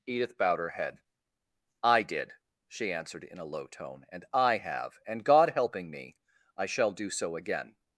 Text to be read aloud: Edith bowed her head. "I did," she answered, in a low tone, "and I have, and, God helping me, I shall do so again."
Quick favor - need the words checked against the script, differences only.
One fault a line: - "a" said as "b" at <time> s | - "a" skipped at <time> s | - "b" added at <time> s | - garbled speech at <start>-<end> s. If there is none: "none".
none